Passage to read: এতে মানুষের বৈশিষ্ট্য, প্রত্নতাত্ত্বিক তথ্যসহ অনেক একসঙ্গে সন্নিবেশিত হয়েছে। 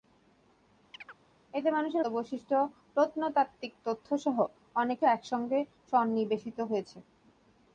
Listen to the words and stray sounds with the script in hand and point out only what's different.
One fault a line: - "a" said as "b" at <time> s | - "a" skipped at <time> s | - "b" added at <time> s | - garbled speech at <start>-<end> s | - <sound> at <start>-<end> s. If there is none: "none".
- chirp at 0.9-1.2 s